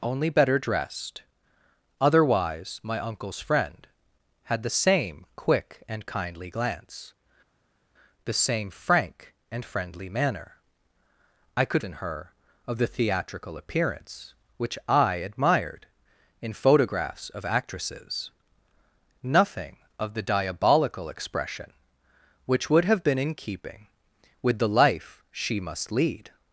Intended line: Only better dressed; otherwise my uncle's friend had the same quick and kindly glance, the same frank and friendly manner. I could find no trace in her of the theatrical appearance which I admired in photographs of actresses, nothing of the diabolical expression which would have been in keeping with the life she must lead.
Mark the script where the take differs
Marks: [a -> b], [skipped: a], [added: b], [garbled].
Only better dressed; otherwise my uncle's friend had the same quick and kindly glance, the same frank and friendly manner. I could [skipped: find no trace] in her of the theatrical appearance which I admired in photographs of actresses, nothing of the diabolical expression which would have been in keeping with the life she must lead.